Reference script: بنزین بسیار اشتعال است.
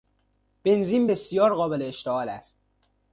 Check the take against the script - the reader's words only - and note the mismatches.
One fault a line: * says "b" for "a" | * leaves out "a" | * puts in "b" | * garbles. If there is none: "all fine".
* puts in "قابل"